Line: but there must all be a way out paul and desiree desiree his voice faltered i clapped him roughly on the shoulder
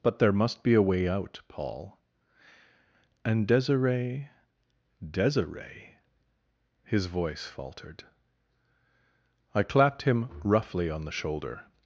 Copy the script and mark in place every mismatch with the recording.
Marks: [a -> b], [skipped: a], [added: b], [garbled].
but there must [skipped: all] be a way out paul and desiree desiree his voice faltered i clapped him roughly on the shoulder